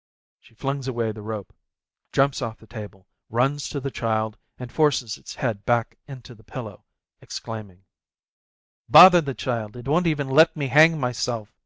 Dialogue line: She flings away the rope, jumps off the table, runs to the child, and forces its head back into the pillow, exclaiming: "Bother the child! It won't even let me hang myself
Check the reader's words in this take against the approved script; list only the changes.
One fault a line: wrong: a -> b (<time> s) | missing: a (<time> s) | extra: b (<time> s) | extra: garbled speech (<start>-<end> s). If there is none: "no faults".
no faults